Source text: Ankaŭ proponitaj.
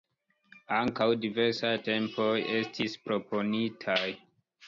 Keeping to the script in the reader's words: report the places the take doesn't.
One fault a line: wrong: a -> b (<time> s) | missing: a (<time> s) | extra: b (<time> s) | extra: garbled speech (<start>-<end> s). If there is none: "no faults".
extra: diversaj tempoj estis (1.2 s)